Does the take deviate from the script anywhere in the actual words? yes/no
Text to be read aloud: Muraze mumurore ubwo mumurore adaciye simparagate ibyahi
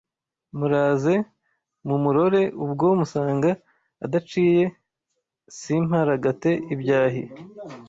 yes